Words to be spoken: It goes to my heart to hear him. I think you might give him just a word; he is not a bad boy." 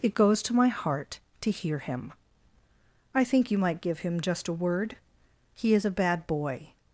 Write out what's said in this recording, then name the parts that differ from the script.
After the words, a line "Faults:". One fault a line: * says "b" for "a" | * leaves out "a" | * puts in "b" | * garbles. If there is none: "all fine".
It goes to my heart to hear him. I think you might give him just a word; he is a bad boy."
Faults:
* leaves out "not"